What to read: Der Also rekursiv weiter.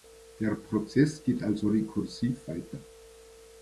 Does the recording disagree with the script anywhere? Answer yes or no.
yes